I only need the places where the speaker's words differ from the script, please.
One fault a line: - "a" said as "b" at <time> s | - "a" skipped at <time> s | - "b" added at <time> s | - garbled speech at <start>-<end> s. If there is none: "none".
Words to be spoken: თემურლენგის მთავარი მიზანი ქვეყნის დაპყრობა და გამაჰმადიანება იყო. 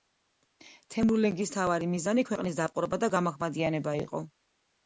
none